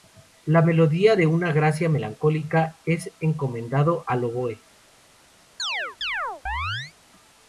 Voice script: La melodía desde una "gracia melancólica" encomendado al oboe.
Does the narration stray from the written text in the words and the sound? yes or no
yes